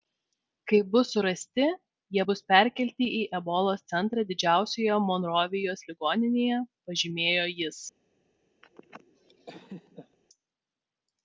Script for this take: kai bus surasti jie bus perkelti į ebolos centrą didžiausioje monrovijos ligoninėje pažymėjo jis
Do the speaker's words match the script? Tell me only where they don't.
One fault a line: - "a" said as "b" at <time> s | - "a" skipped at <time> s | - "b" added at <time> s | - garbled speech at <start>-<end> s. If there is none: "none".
none